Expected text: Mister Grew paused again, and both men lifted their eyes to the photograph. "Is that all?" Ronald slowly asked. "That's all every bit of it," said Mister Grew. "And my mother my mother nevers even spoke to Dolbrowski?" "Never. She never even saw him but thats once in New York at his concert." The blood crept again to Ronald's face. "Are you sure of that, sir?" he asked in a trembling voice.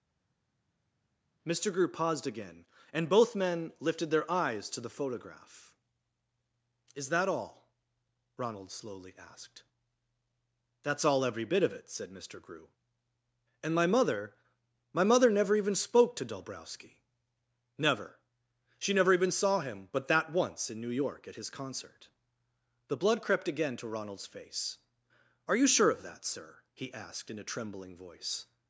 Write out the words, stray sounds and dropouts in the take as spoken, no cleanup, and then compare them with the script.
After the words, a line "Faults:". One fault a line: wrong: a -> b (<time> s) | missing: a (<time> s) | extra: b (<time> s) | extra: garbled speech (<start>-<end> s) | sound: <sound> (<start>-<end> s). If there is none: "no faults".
Mister Grew paused again, and both men lifted their eyes to the photograph. "Is that all?" Ronald slowly asked. "That's all every bit of it," said Mister Grew. "And my mother my mother never even spoke to Dolbrowski?" "Never. She never even saw him but that once in New York at his concert." The blood crept again to Ronald's face. "Are you sure of that, sir?" he asked in a trembling voice.
Faults:
wrong: nevers -> never (15.3 s)
wrong: thats -> that (20.1 s)